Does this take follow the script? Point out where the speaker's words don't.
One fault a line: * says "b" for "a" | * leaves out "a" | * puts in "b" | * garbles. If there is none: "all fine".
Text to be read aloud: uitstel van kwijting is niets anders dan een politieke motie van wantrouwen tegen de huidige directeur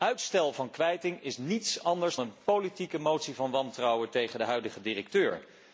* leaves out "dan"